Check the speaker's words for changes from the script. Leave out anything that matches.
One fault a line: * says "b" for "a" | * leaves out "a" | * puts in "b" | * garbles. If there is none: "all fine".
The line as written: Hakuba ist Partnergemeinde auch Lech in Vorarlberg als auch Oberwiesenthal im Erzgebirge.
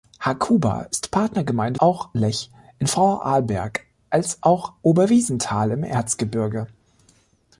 all fine